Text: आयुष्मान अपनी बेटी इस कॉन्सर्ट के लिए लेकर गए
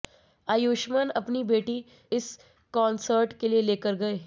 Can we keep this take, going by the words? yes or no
yes